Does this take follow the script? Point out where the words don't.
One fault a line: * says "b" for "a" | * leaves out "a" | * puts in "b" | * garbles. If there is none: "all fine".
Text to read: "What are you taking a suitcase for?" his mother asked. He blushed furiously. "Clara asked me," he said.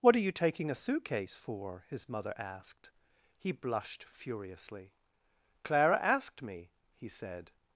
all fine